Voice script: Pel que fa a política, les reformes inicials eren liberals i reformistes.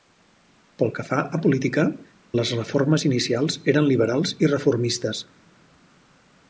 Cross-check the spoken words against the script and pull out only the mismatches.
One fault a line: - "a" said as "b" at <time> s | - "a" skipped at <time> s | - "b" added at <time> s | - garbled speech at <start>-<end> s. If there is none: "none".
none